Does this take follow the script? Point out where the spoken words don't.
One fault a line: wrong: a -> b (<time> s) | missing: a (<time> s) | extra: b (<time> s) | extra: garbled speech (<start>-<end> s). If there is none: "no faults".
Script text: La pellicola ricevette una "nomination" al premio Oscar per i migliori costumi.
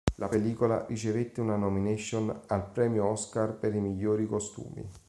no faults